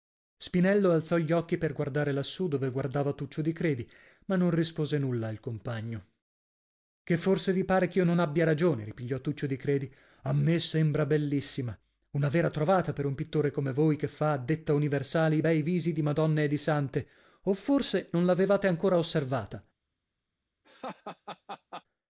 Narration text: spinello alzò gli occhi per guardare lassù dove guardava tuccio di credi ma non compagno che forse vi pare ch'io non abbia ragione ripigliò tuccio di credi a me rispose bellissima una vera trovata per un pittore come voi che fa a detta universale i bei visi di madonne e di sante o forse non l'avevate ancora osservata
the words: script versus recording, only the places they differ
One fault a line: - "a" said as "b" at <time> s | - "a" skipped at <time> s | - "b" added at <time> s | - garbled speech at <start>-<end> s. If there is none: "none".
- "rispose nulla al" added at 4.5 s
- "rispose" said as "sembra" at 10.6 s